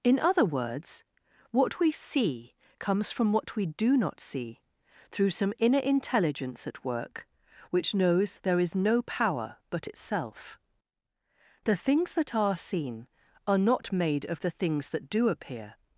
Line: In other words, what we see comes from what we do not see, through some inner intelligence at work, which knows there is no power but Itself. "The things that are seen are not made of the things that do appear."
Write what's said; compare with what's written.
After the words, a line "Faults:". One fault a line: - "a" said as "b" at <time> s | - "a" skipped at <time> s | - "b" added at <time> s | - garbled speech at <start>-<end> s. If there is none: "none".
In other words, what we see comes from what we do not see, through some inner intelligence at work, which knows there is no power but Itself. "The things that are seen are not made of the things that do appear."
Faults:
none